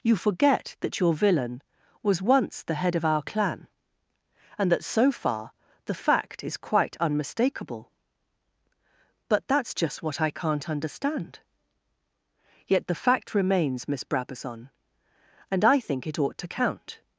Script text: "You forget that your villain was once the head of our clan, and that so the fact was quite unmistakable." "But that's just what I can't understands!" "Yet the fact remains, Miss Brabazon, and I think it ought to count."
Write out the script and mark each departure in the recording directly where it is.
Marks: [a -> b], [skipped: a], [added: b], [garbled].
"You forget that your villain was once the head of our clan, and that so [added: far] the fact [was -> is] quite unmistakable." "But that's just what I can't [understands!" -> understand] "Yet the fact remains, Miss Brabazon, and I think it ought to count."